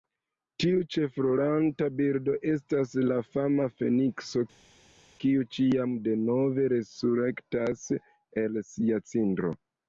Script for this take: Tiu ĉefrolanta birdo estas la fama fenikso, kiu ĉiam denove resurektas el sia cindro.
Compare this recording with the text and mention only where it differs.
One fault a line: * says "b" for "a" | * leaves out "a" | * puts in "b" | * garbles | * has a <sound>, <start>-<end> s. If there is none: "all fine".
all fine